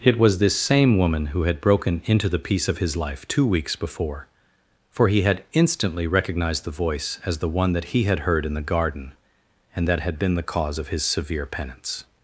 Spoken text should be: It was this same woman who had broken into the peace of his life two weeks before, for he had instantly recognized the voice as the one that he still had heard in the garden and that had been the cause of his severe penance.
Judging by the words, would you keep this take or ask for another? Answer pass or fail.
fail